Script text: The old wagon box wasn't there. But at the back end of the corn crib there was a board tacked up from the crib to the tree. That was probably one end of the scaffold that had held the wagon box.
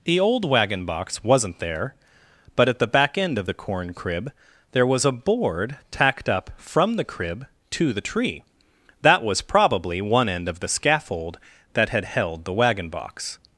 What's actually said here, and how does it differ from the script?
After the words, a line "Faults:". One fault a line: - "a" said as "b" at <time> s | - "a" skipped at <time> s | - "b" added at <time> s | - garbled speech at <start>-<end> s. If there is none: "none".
The old wagon box wasn't there. But at the back end of the corn crib there was a board tacked up from the crib to the tree. That was probably one end of the scaffold that had held the wagon box.
Faults:
none